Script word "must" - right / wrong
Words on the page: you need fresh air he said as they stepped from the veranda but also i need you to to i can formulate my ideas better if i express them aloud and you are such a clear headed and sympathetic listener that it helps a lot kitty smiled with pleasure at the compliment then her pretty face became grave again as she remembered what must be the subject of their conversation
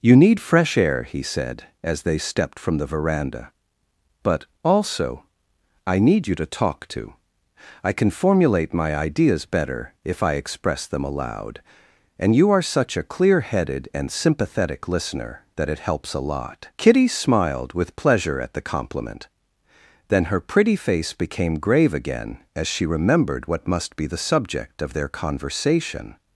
right